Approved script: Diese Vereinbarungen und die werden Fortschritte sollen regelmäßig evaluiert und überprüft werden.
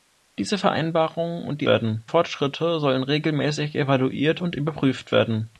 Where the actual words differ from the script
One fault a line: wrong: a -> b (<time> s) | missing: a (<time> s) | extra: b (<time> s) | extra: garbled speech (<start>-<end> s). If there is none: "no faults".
no faults